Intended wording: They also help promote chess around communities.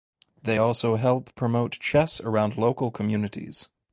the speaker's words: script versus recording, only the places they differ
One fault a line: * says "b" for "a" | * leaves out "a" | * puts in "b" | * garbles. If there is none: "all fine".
* puts in "local"